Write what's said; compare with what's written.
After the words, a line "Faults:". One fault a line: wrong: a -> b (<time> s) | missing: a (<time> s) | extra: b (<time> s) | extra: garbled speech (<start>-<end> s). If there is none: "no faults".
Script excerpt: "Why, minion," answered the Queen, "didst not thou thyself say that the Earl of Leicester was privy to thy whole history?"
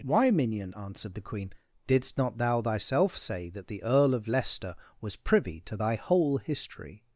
"Why, minion," answered the Queen, "didst not thou thyself say that the Earl of Leicester was privy to thy whole history?"
Faults:
no faults